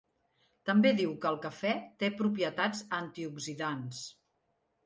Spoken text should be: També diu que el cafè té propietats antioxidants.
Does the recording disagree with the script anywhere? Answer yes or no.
no